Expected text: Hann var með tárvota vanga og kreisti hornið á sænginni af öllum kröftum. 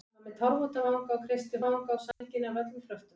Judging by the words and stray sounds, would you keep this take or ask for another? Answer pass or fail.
fail